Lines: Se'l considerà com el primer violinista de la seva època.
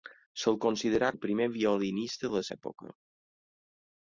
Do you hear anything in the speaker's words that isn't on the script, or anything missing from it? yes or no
yes